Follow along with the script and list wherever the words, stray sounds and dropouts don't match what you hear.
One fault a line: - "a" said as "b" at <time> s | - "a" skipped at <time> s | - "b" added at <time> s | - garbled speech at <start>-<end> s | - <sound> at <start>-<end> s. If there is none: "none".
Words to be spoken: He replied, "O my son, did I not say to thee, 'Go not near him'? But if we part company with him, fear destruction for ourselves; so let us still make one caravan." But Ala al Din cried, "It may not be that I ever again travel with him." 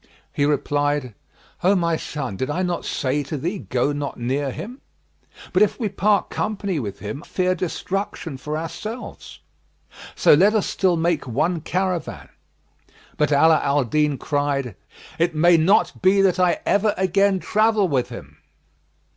none